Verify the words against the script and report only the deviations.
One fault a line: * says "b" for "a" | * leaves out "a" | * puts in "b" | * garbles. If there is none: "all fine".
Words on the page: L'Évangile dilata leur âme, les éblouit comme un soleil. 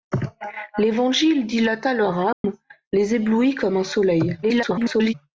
* garbles